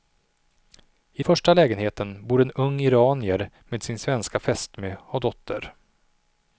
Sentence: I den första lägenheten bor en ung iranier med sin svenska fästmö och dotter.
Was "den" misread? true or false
true